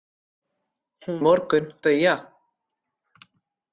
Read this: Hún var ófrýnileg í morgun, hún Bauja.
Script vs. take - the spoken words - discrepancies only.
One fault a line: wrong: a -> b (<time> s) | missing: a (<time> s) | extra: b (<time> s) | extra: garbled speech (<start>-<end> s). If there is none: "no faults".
missing: var ófrýnileg (1.2 s)
missing: hún (1.7 s)